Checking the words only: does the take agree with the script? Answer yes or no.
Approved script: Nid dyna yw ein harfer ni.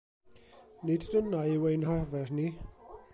yes